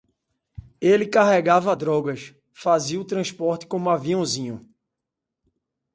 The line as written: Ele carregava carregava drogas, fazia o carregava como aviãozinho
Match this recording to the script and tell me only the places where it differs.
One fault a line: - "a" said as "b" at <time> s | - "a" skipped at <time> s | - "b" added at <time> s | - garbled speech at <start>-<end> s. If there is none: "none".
- "carregava" skipped at 1.8 s
- "carregava" said as "transporte" at 3.0 s